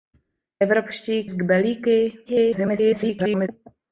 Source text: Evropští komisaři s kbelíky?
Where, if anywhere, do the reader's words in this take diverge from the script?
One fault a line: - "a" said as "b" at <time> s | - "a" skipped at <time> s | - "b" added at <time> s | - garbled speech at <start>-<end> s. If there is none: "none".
- "komisaři" skipped at 1.3 s
- garbled speech at 2.2-3.5 s